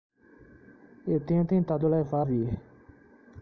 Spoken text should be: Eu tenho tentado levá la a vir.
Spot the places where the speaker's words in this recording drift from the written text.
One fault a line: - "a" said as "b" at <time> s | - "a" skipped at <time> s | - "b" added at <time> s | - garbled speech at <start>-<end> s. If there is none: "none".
- "la" skipped at 2.2 s